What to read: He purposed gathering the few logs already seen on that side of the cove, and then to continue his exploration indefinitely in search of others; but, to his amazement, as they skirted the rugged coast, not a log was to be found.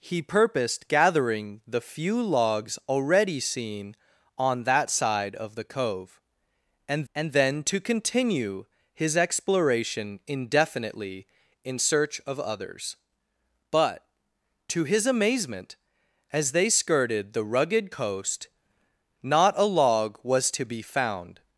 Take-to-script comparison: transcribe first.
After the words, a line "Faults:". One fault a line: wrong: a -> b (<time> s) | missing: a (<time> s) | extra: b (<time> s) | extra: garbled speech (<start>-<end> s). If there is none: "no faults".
He purposed gathering the few logs already seen on that side of the cove, and and then to continue his exploration indefinitely in search of others; but, to his amazement, as they skirted the rugged coast, not a log was to be found.
Faults:
extra: and (7.1 s)